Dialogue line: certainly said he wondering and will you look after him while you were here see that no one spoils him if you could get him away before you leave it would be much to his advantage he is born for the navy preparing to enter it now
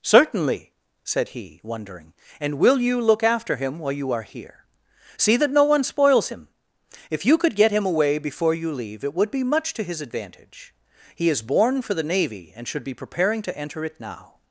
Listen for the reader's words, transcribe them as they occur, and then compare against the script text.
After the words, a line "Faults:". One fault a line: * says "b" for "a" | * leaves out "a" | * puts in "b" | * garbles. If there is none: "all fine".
certainly said he wondering and will you look after him while you are here see that no one spoils him if you could get him away before you leave it would be much to his advantage he is born for the navy and should be preparing to enter it now
Faults:
* says "are" for "were"
* puts in "and should be"